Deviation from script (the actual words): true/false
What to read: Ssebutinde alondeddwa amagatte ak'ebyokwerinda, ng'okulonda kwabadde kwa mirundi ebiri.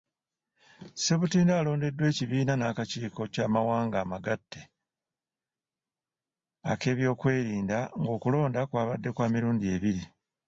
true